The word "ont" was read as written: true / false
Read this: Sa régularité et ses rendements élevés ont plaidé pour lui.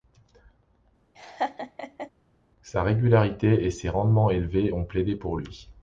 true